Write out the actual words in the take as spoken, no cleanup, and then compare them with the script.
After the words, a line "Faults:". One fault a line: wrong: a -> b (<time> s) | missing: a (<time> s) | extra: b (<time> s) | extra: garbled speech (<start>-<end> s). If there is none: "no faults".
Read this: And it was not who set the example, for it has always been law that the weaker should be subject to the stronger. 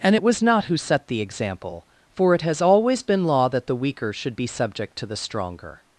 And it was not who set the example, for it has always been law that the weaker should be subject to the stronger.
Faults:
no faults